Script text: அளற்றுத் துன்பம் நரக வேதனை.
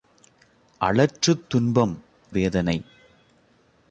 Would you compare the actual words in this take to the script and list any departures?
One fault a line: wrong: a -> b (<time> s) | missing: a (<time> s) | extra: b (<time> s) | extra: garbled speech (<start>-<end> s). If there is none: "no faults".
missing: நரக (1.9 s)